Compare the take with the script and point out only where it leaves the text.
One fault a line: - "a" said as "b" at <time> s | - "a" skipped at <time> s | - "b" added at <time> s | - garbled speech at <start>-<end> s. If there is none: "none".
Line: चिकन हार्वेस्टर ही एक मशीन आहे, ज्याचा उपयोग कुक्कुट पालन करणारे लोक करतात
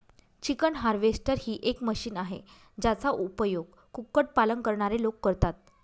none